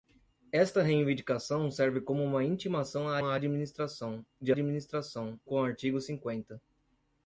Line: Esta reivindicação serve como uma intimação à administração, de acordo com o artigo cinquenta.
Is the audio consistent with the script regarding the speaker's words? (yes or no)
no